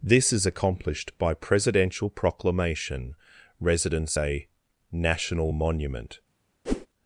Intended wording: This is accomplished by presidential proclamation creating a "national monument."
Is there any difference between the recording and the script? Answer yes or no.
yes